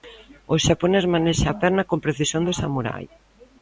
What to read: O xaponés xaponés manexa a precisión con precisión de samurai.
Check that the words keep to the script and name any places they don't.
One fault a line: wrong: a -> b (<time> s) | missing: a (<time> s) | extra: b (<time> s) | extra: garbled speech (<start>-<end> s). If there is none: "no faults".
missing: xaponés (1.1 s)
wrong: precisión -> perna (1.6 s)